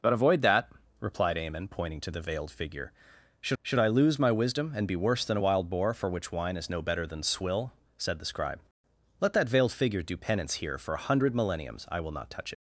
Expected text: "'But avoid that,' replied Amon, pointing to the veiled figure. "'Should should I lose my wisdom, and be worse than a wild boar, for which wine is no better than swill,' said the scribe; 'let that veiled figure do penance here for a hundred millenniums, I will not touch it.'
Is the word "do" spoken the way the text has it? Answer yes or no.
yes